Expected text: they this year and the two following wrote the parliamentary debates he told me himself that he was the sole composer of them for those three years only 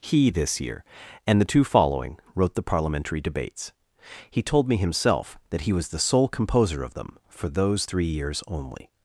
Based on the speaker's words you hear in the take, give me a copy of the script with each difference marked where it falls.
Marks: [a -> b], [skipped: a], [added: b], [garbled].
[they -> he] this year and the two following wrote the parliamentary debates he told me himself that he was the sole composer of them for those three years only